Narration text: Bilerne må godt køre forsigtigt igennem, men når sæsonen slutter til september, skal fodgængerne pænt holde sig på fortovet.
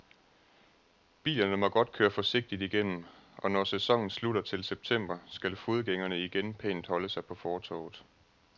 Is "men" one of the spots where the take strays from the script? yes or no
yes